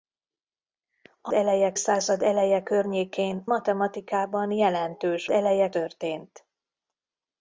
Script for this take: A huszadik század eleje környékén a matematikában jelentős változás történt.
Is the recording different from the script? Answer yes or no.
yes